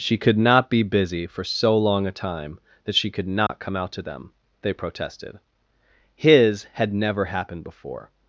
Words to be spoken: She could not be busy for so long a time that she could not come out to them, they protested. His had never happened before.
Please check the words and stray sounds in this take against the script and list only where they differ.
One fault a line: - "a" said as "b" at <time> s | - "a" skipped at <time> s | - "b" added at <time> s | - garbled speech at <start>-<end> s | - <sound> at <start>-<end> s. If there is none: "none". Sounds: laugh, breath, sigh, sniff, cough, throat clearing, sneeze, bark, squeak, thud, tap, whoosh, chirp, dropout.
- dropout at 3.5-3.5 s